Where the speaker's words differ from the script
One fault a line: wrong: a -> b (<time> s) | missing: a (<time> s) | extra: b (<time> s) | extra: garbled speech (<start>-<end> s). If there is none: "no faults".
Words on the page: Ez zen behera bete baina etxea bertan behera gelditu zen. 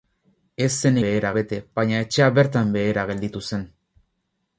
no faults